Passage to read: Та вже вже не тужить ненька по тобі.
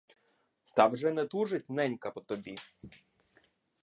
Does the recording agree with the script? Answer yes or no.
no